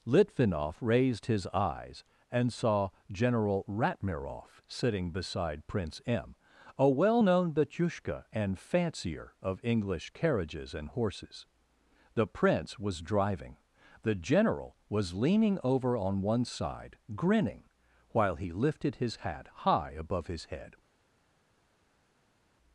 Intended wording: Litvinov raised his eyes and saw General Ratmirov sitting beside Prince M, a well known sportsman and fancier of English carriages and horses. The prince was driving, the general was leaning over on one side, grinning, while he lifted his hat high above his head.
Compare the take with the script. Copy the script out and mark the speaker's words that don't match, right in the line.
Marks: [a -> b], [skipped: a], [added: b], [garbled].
Litvinov raised his eyes and saw General Ratmirov sitting beside Prince M, a well known [sportsman -> batyushka] and fancier of English carriages and horses. The prince was driving, the general was leaning over on one side, grinning, while he lifted his hat high above his head.